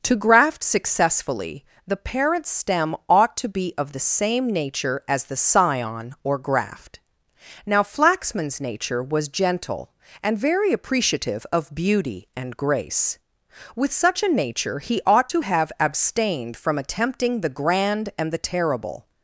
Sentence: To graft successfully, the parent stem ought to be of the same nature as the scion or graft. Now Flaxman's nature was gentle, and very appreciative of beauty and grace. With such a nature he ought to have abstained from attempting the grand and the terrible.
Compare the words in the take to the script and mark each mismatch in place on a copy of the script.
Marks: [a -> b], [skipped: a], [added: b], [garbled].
To graft successfully, the parent stem ought to be of the same nature as the scion or graft. Now Flaxman's nature was gentle, and very appreciative of beauty and grace. With such a nature he ought to have abstained from attempting the grand and the terrible.